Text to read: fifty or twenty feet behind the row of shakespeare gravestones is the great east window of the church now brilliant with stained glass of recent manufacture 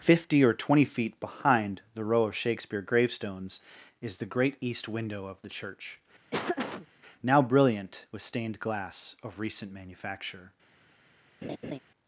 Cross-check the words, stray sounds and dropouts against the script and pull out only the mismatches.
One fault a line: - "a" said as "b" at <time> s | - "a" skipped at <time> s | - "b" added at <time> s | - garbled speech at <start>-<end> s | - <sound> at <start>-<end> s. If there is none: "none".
- laugh at 6.3-6.9 s
- laugh at 11.4-11.8 s